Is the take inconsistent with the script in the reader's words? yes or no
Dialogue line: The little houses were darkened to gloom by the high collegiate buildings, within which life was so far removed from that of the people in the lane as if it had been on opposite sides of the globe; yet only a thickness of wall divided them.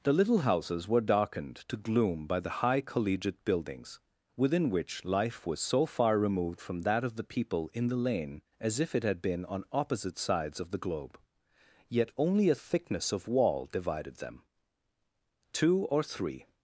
yes